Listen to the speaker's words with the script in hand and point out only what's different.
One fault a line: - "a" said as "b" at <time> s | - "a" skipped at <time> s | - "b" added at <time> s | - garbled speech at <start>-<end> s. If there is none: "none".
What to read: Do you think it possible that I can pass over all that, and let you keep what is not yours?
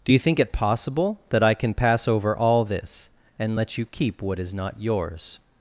- "that" said as "this" at 2.6 s